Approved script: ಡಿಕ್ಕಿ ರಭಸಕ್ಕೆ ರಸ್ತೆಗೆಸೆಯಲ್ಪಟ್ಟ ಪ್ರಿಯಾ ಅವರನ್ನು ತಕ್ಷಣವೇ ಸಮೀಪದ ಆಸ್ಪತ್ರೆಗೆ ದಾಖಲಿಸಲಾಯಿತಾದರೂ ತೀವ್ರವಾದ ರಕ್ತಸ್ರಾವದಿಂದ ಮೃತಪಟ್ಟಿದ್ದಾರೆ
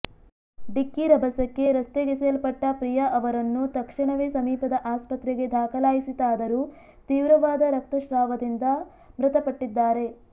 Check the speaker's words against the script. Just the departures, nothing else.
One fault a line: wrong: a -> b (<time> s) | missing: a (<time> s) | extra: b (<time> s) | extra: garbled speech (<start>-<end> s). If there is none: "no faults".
no faults